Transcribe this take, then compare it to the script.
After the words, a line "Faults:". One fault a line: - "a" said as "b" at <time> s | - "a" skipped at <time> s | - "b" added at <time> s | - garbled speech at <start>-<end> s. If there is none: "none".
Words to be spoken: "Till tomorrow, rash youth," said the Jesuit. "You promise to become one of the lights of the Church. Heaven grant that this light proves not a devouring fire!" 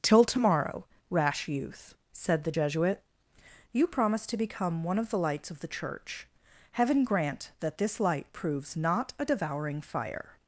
"Till tomorrow, rash youth," said the Jesuit. "You promise to become one of the lights of the Church. Heaven grant that this light proves not a devouring fire!"
Faults:
none